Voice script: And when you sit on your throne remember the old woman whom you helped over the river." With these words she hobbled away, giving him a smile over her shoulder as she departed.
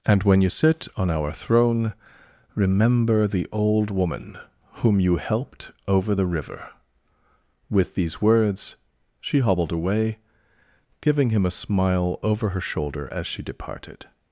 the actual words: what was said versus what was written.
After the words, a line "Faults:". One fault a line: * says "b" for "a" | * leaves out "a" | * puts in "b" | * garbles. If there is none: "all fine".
And when you sit on our throne remember the old woman whom you helped over the river." With these words she hobbled away, giving him a smile over her shoulder as she departed.
Faults:
* says "our" for "your"